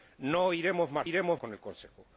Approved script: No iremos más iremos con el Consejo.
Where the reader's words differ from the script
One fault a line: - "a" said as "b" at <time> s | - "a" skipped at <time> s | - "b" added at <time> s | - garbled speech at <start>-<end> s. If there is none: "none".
none